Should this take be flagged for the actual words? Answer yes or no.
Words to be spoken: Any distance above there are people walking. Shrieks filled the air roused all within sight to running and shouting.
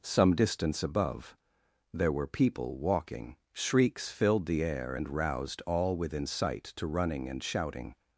yes